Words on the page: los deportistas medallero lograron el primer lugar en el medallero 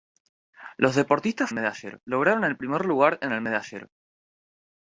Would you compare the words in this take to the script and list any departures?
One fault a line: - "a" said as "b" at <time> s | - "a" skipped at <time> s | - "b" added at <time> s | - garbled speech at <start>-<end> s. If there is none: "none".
none